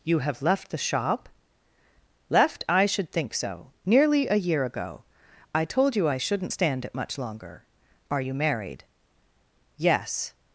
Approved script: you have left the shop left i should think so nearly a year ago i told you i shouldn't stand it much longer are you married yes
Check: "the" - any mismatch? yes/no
no